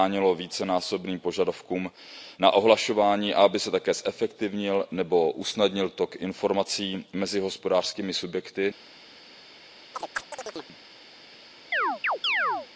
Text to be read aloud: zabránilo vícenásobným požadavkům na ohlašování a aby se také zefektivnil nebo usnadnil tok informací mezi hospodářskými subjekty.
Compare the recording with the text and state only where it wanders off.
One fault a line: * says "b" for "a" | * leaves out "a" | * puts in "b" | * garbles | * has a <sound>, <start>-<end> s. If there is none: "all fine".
* has a chirp, 9.9-10.8 s
* has a chirp, 11.7-12.7 s